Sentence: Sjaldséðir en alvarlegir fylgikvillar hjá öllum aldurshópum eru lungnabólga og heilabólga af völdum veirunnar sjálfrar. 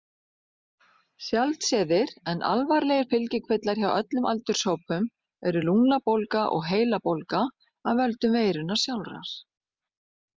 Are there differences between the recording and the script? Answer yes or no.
no